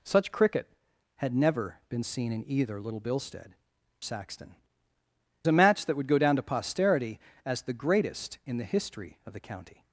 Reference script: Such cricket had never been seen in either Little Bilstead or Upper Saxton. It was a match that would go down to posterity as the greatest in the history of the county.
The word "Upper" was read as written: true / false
false